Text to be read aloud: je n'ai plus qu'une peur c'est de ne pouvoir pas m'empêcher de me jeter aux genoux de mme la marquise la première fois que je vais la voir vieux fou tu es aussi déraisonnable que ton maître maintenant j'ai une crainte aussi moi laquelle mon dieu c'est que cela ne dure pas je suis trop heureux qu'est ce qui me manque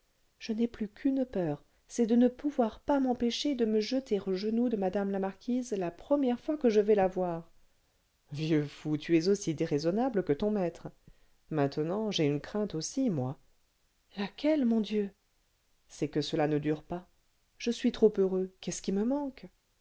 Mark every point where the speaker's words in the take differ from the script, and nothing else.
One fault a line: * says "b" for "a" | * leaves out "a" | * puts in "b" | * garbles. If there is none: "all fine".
all fine